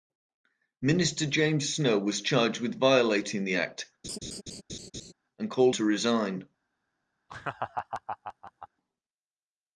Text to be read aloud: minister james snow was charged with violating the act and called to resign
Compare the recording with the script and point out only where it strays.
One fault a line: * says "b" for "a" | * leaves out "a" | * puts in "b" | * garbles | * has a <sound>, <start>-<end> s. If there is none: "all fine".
* has a laugh, 4.0-5.1 s
* has a laugh, 7.3-8.7 s